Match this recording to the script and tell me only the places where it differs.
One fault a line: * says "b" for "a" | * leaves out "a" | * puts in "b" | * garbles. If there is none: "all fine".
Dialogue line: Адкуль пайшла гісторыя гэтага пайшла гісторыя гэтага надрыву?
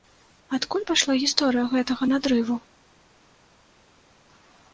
* leaves out "пайшла гісторыя гэтага"